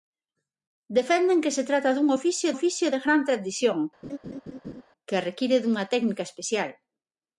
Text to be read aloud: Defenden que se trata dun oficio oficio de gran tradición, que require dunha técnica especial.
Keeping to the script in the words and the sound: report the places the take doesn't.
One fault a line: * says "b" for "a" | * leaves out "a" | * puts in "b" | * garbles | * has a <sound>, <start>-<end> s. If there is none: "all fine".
* has a laugh, 4.0-4.8 s